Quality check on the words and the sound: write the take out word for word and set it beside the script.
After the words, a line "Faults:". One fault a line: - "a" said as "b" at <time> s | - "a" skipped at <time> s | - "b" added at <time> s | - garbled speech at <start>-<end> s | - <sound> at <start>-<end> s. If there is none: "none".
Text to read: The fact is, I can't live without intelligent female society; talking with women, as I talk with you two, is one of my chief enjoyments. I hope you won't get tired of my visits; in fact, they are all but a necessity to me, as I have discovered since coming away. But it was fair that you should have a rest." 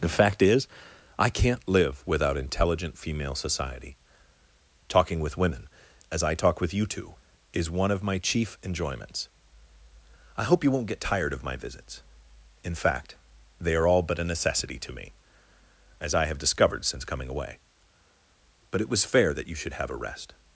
The fact is, I can't live without intelligent female society; talking with women, as I talk with you two, is one of my chief enjoyments. I hope you won't get tired of my visits; in fact, they are all but a necessity to me, as I have discovered since coming away. But it was fair that you should have a rest."
Faults:
none